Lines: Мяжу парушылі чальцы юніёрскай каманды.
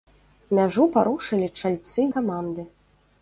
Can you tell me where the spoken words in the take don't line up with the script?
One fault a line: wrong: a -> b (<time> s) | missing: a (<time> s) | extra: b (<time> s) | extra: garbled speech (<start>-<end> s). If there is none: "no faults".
missing: юніёрскай (2.0 s)